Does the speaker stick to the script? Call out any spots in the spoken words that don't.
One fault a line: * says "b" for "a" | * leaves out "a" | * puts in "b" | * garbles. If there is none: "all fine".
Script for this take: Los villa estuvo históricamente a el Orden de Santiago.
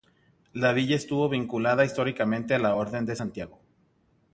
* says "La" for "Los"
* puts in "vinculada"
* says "la" for "el"